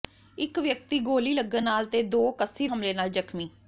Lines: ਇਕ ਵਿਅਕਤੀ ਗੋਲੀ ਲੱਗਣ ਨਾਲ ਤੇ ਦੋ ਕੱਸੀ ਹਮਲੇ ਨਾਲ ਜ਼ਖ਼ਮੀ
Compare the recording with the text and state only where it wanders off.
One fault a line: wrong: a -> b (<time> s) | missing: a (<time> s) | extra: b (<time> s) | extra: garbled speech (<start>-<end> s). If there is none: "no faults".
no faults